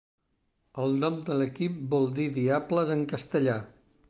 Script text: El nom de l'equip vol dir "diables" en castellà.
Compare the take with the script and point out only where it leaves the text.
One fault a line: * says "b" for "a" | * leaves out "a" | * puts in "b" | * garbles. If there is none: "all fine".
all fine